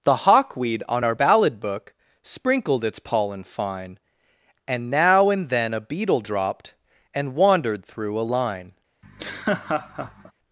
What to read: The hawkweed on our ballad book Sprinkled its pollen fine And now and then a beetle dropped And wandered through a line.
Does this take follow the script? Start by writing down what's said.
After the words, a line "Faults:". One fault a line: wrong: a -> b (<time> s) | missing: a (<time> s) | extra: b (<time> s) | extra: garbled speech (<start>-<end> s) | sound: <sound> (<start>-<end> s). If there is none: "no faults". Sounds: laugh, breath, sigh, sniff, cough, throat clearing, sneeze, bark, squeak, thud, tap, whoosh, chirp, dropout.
The hawkweed on our ballad book Sprinkled its pollen fine And now and then a beetle dropped And wandered through a line.
Faults:
sound: laugh (9.0-10.3 s)